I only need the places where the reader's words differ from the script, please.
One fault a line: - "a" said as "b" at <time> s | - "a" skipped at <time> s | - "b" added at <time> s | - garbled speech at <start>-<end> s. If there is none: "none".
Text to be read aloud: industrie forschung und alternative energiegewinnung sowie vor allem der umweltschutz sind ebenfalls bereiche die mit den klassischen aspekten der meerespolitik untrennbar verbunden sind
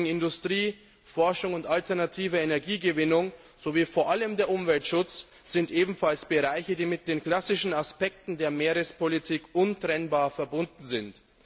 none